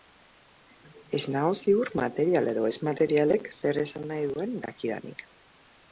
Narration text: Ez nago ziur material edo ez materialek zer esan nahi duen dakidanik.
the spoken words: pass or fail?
pass